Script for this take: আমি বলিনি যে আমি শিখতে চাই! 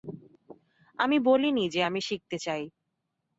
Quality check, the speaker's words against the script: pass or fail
pass